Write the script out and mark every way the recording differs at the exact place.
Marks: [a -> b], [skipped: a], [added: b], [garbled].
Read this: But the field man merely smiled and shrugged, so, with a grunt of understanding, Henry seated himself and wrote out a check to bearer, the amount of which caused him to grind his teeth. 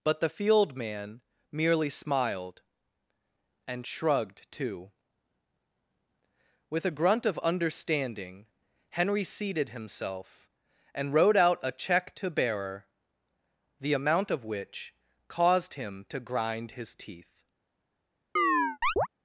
But the field man merely smiled and shrugged, [so, -> too] with a grunt of understanding, Henry seated himself and wrote out a check to bearer, the amount of which caused him to grind his teeth.